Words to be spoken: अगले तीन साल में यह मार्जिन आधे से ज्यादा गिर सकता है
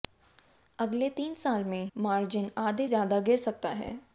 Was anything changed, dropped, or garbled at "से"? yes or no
yes